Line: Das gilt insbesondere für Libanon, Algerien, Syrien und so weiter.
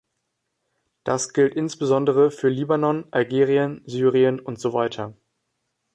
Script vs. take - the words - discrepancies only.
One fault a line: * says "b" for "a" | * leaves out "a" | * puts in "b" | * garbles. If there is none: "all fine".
all fine